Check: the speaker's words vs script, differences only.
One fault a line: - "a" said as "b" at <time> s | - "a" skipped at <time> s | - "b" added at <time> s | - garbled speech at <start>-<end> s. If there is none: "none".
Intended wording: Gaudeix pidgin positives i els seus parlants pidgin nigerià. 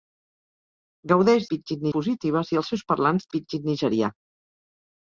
none